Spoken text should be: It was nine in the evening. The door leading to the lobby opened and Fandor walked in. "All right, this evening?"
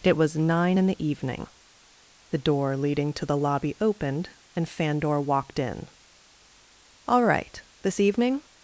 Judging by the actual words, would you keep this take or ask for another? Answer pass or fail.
pass